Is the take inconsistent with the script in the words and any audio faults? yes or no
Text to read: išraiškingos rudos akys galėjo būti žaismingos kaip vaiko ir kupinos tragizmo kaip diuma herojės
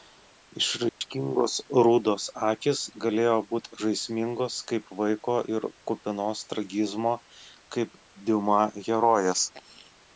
yes